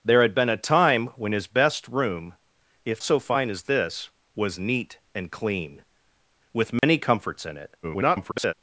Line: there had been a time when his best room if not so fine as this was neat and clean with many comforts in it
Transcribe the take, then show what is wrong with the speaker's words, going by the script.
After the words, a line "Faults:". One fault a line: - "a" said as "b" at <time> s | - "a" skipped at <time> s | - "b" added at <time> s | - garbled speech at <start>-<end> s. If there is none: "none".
there had been a time when his best room if so fine as this was neat and clean with many comforts in it [garbled]
Faults:
- "not" skipped at 3.0 s
- garbled speech at 7.8-8.5 s